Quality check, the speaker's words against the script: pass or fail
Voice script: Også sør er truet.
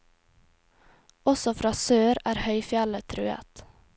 fail